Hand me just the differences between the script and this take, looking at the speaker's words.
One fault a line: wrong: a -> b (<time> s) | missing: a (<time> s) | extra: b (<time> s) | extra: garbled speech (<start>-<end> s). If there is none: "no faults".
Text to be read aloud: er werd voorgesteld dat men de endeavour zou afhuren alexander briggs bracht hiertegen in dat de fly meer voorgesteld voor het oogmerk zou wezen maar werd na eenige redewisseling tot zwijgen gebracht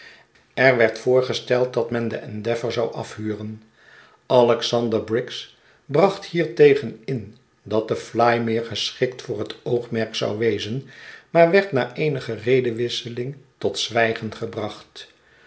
wrong: voorgesteld -> geschikt (8.6 s)